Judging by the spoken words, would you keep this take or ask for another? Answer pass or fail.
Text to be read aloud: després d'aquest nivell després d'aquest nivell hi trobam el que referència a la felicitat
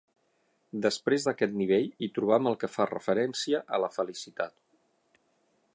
fail